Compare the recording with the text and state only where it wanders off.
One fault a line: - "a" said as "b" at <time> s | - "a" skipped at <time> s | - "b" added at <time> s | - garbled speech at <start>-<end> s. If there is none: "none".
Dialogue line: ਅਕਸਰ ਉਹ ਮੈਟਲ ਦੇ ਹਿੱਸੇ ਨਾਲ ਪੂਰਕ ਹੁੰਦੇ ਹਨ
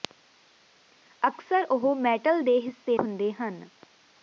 - "ਨਾਲ ਪੂਰਕ" skipped at 3.0 s